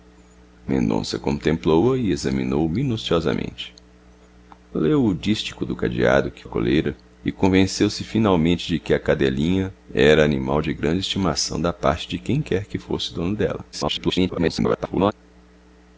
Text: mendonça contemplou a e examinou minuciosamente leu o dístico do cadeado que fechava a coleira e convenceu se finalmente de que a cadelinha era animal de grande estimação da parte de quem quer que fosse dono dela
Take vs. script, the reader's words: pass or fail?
fail